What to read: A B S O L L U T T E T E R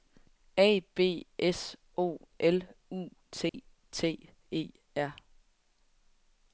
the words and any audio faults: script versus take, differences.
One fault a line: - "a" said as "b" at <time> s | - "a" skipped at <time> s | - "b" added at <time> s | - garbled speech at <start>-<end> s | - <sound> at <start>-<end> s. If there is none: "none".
- "L" skipped at 2.6 s
- dropout at 3.5-3.5 s
- "T E" skipped at 4.7 s